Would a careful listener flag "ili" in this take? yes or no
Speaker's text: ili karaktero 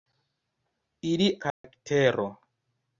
no